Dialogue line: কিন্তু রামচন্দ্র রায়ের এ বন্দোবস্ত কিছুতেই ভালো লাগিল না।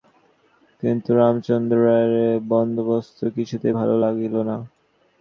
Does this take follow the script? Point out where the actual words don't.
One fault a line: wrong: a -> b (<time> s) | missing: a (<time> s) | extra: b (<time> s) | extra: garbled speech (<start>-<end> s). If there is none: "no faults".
no faults